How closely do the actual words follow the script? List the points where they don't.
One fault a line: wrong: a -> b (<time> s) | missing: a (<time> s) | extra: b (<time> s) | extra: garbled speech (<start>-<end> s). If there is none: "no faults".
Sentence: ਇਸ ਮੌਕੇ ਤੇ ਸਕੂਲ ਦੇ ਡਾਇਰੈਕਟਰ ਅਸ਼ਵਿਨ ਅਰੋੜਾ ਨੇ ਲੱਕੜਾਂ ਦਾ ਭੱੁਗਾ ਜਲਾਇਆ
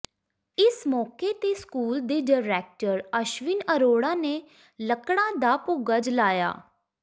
no faults